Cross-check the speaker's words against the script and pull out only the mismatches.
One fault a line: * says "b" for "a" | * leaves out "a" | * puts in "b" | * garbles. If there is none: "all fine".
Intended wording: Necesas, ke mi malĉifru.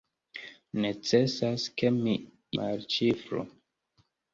all fine